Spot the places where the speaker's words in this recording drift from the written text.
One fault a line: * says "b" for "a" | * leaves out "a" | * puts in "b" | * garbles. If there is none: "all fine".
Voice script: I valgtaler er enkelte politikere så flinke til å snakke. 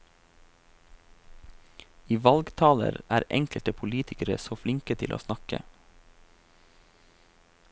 all fine